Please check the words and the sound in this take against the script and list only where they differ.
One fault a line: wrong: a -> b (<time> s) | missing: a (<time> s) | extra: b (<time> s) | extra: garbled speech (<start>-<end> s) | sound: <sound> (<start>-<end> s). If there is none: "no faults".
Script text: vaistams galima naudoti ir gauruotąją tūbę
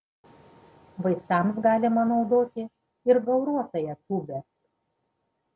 no faults